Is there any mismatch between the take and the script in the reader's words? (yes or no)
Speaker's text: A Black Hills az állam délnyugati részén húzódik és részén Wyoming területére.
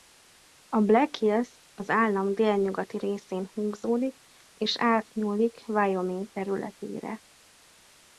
yes